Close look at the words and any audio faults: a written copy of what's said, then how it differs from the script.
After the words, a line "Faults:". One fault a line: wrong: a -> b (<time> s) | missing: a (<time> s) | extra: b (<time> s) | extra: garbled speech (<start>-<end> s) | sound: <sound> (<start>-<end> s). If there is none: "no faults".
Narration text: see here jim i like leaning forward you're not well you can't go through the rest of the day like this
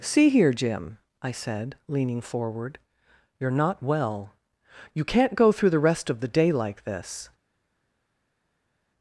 see here jim i said leaning forward you're not well you can't go through the rest of the day like this
Faults:
wrong: like -> said (1.3 s)